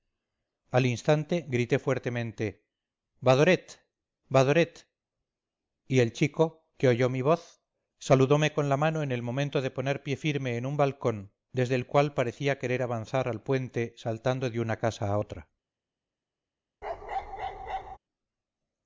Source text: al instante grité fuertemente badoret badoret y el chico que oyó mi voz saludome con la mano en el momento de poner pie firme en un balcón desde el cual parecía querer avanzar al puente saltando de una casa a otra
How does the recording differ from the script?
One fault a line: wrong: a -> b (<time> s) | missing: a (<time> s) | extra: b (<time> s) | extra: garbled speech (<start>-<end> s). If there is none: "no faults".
no faults